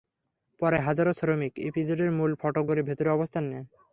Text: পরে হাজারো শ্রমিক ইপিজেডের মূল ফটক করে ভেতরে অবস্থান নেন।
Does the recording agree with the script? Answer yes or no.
yes